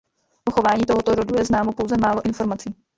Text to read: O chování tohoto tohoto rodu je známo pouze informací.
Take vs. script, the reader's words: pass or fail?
fail